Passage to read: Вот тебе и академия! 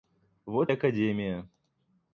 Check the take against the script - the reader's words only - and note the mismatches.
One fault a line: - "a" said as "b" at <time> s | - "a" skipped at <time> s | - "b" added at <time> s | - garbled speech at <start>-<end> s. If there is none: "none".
- "тебе" skipped at 0.7 s